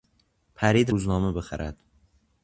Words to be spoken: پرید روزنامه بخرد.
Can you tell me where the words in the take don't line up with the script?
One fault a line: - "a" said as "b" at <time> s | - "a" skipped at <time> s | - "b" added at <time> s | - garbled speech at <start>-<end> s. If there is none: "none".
none